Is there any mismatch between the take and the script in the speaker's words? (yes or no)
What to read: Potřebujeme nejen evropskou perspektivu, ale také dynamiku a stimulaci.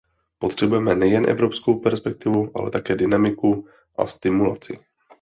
no